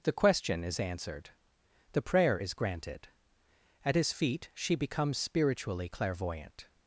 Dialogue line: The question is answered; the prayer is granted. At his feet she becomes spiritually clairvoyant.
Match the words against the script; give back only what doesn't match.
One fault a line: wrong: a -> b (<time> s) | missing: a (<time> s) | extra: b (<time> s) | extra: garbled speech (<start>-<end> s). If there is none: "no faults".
no faults